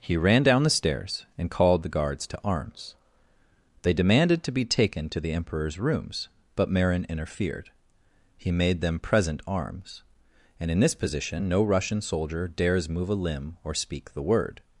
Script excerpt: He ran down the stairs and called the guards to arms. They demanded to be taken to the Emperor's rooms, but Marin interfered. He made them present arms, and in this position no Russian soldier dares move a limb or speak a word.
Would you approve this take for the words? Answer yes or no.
no